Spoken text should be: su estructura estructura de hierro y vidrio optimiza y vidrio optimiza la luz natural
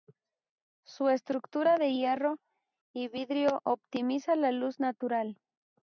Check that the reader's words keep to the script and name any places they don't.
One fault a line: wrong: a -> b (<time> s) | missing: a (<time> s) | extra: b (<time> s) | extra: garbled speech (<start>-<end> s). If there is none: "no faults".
missing: estructura (1.8 s)
missing: y vidrio optimiza (4.4 s)